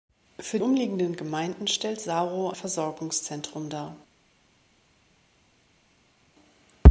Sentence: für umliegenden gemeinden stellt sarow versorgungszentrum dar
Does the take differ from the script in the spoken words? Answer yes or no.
no